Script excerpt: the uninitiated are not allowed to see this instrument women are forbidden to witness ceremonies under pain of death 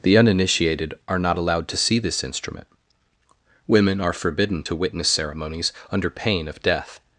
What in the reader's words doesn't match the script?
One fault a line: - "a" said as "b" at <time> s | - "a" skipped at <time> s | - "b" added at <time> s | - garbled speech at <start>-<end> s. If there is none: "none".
none